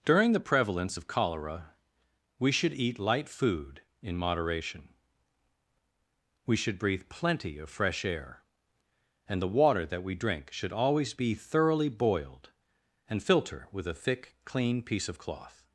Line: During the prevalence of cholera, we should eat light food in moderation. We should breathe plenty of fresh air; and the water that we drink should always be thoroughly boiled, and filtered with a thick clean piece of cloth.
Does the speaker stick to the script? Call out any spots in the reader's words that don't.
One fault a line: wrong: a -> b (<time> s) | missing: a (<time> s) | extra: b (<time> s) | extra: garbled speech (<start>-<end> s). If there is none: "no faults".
wrong: filtered -> filter (13.2 s)